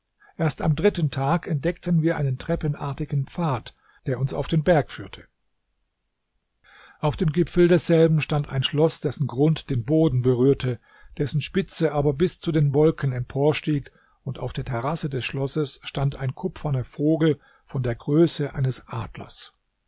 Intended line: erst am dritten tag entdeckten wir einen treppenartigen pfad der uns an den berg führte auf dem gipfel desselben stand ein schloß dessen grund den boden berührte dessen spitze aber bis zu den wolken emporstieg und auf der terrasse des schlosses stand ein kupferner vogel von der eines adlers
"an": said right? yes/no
no